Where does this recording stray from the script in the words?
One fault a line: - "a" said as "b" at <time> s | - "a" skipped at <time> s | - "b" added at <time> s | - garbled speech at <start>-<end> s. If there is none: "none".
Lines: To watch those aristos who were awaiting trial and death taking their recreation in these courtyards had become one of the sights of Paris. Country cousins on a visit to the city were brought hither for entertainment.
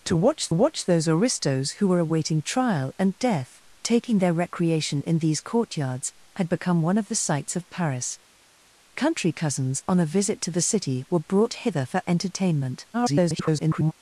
- "watch" added at 0.5 s
- garbled speech at 12.9-13.9 s